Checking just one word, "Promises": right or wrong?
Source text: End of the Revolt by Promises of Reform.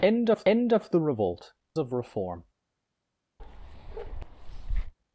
wrong